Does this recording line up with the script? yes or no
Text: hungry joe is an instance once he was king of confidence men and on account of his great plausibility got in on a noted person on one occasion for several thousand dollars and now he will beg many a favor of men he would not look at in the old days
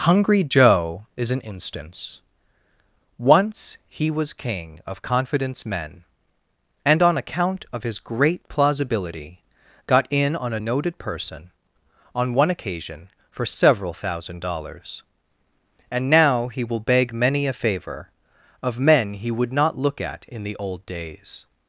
yes